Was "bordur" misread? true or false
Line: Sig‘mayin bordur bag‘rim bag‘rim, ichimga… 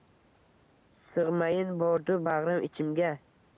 false